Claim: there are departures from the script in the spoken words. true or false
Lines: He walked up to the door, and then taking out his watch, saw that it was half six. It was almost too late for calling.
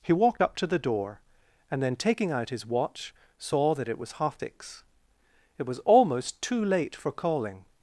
false